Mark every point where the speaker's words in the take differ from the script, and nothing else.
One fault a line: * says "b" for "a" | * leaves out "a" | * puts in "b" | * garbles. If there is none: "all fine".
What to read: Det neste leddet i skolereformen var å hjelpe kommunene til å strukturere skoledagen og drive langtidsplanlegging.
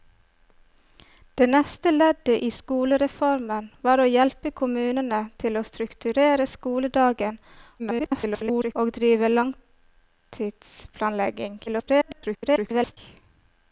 * garbles
* garbles